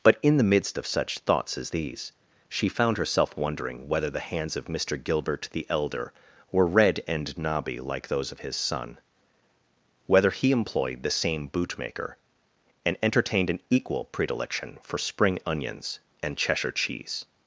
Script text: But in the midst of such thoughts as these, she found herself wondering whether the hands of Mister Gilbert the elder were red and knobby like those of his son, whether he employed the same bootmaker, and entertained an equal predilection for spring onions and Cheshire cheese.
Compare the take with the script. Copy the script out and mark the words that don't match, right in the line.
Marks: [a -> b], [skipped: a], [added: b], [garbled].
But in the midst of such thoughts as these, she found herself wondering whether the hands of Mister Gilbert the elder were red and knobby like those of his son, whether he employed the same bootmaker, and entertained an equal predilection for spring onions and Cheshire cheese.